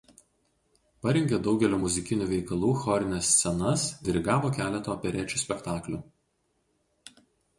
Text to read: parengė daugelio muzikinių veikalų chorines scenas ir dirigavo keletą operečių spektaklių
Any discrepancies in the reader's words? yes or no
yes